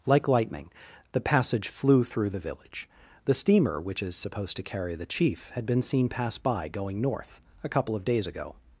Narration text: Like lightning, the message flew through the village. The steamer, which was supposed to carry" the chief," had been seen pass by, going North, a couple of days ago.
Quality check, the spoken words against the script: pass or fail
fail